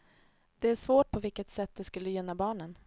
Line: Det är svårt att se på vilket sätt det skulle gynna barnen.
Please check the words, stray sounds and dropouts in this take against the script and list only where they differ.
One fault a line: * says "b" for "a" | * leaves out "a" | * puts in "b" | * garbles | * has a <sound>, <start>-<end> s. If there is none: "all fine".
* leaves out "att se"